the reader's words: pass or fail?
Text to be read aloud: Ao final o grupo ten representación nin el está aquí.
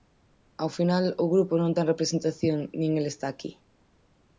fail